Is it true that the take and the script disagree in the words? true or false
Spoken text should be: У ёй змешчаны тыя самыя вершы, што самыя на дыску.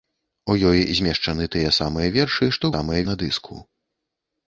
false